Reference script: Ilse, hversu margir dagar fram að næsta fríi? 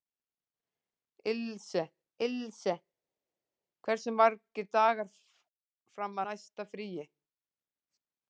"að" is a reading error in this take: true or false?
true